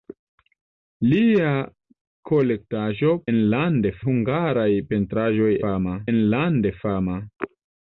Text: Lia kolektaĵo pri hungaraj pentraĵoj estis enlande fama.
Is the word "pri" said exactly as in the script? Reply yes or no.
no